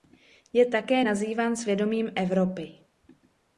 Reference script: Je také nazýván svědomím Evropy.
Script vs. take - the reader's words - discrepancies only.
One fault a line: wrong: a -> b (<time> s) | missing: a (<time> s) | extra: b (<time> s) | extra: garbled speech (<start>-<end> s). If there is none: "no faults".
no faults